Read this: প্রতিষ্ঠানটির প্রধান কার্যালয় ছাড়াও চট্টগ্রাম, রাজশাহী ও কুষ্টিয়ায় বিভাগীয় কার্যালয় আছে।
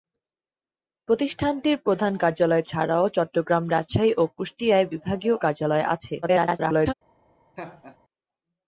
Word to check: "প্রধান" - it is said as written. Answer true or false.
true